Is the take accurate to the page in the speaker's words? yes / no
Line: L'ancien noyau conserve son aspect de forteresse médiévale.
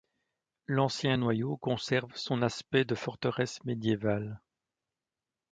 yes